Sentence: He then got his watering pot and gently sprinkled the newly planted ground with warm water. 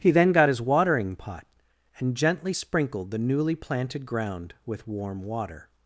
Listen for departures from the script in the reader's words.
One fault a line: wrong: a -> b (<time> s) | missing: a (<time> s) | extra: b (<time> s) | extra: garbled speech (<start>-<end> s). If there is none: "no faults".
no faults